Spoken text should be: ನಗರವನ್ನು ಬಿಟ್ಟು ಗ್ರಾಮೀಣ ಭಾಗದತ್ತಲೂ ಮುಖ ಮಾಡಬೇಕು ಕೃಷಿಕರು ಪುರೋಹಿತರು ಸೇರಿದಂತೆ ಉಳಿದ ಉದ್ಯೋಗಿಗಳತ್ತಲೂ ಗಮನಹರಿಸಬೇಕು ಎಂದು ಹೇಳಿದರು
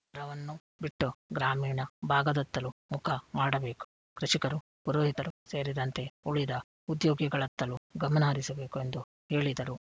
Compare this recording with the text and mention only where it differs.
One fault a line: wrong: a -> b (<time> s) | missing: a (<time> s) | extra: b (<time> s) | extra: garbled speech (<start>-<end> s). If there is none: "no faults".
no faults